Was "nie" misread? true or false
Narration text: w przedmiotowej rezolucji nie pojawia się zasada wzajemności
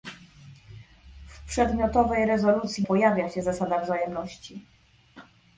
true